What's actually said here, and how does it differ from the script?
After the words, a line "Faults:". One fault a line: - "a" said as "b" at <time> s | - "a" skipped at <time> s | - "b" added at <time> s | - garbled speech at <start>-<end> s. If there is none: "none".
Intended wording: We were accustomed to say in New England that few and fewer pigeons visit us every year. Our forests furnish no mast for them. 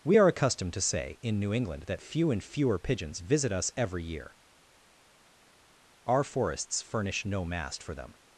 We are accustomed to say in New England that few and fewer pigeons visit us every year. Our forests furnish no mast for them.
Faults:
- "were" said as "are" at 0.2 s